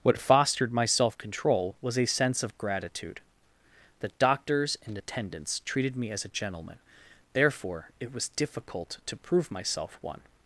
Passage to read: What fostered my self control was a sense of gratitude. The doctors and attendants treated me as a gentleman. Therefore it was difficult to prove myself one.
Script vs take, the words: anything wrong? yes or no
no